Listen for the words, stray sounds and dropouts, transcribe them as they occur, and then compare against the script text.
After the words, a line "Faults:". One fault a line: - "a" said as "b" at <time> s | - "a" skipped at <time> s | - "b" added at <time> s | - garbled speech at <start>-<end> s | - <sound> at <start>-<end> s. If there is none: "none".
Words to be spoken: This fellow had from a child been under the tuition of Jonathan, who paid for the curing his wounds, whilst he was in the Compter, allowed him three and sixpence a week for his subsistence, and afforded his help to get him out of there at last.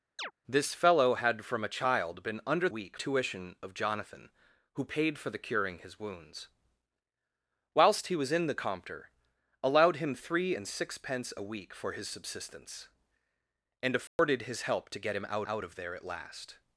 This fellow had from a child been under week tuition of Jonathan, who paid for the curing his wounds, whilst he was in the Compter, allowed him three and sixpence a week for his subsistence, and afforded his help to get him out out of there at last.
Faults:
- chirp at 0.2-0.3 s
- "the" said as "week" at 2.7 s
- dropout at 14.1-14.2 s
- "out" added at 15.4 s